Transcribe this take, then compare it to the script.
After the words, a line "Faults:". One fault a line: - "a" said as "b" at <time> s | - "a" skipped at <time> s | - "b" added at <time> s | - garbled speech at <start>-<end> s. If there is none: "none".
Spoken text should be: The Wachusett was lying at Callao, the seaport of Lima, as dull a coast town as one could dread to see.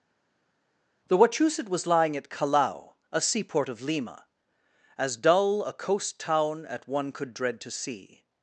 The Wachusett was lying at Callao, a seaport of Lima, as dull a coast town at one could dread to see.
Faults:
- "the" said as "a" at 3.1 s
- "as" said as "at" at 6.6 s